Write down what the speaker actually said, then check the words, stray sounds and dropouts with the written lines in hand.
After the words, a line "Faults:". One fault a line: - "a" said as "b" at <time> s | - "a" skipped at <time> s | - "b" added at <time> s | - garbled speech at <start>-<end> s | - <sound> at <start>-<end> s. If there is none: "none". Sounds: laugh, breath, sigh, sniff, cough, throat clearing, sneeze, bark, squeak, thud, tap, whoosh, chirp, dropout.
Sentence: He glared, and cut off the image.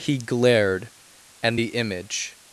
He glared, and the image.
Faults:
- "cut off" skipped at 1.6 s